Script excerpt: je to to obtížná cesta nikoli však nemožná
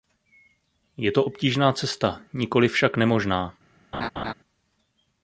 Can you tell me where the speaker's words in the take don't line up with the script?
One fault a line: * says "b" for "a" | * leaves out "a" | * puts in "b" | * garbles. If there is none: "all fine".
* leaves out "to"